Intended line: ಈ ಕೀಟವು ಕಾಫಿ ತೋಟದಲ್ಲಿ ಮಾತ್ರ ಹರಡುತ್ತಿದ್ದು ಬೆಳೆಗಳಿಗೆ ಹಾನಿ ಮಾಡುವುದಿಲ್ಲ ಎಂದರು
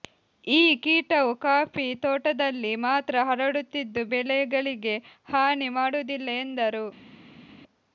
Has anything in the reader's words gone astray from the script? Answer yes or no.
no